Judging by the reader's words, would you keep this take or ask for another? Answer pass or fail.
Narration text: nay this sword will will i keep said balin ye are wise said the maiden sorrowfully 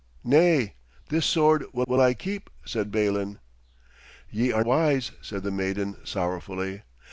pass